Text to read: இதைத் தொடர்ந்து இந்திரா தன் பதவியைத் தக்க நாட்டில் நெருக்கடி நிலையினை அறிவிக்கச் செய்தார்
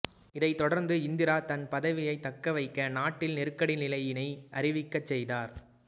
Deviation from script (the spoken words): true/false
true